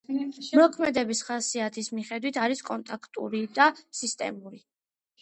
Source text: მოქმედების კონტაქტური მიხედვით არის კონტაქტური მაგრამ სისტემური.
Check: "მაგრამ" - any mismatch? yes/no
yes